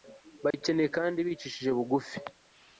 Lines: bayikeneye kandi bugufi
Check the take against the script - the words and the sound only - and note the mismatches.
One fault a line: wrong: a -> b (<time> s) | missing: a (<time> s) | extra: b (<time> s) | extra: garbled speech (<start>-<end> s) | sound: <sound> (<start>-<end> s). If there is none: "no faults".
sound: dropout (0.5-0.5 s)
extra: bicishije (1.3 s)